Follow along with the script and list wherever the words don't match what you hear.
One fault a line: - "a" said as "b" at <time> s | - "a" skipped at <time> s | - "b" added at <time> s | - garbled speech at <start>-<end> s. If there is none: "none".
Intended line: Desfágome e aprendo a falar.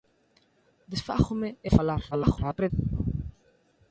- "aprendo" skipped at 1.7 s
- garbled speech at 2.1-2.7 s